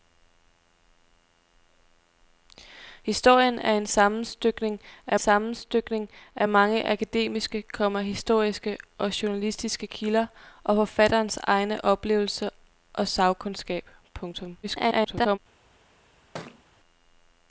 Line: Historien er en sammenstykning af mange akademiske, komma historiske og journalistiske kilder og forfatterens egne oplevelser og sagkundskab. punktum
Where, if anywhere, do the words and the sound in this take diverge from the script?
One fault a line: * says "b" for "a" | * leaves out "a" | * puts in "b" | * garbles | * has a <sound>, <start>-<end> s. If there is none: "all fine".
* puts in "sammenstykning af"
* garbles
* has a thud, 16.3-16.6 s